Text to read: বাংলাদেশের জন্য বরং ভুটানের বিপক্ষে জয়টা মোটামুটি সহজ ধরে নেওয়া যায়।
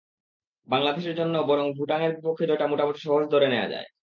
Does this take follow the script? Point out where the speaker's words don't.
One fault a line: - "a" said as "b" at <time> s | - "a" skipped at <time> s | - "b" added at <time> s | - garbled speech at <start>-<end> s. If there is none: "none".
none